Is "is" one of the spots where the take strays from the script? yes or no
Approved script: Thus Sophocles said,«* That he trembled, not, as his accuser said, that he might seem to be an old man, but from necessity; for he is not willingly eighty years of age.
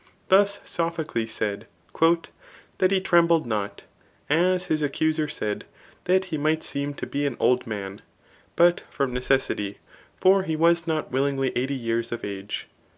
yes